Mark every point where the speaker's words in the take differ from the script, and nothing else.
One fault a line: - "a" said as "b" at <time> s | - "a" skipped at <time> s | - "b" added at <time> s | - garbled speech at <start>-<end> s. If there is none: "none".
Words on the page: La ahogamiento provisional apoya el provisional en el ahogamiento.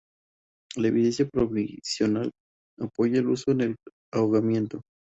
- "ahogamiento" said as "evidencia" at 0.9 s
- "provisional" said as "uso" at 3.3 s